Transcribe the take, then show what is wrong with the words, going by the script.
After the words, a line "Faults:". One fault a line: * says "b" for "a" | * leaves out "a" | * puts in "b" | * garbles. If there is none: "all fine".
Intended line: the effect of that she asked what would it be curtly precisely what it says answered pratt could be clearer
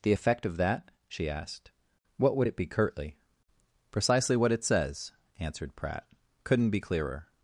the effect of that she asked what would it be curtly precisely what it says answered pratt couldn't be clearer
Faults:
* says "couldn't" for "could"